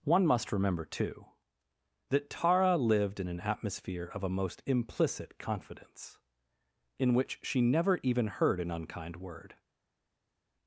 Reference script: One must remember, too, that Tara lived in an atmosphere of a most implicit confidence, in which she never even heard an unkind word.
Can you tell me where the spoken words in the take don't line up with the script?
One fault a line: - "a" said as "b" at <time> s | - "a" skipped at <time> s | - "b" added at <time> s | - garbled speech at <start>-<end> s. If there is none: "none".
none